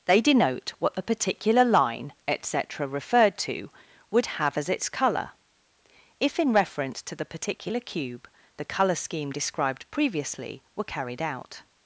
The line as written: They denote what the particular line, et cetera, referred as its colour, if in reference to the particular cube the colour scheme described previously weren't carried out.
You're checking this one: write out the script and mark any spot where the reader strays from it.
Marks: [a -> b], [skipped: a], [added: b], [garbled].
They denote what the particular line, et cetera, referred [added: to would have] as its colour, if in reference to the particular cube the colour scheme described previously [weren't -> were] carried out.